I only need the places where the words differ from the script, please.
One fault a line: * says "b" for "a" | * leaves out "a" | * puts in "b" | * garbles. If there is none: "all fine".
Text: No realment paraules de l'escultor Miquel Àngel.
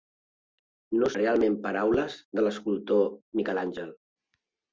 all fine